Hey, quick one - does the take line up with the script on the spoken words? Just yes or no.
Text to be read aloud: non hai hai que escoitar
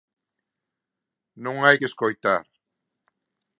no